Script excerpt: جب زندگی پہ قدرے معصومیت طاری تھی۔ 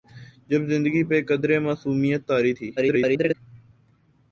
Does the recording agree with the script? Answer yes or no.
no